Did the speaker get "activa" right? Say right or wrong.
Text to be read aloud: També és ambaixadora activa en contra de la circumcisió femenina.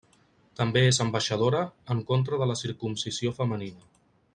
wrong